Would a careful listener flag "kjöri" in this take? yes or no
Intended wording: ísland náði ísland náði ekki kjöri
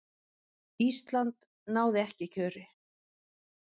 no